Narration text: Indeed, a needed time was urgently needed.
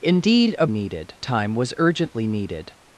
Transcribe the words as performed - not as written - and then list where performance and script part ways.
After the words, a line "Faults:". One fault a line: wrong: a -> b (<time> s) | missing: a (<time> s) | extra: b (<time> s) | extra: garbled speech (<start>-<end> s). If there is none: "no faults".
Indeed, a needed time was urgently needed.
Faults:
no faults